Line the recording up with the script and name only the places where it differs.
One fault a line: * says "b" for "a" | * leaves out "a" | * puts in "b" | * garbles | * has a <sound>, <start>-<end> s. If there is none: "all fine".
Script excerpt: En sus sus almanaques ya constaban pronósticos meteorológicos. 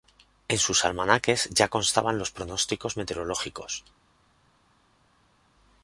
* leaves out "sus"
* puts in "los"